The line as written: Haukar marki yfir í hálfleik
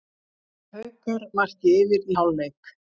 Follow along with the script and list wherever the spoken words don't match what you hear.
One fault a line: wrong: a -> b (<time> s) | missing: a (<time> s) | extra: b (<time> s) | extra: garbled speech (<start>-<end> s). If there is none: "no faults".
no faults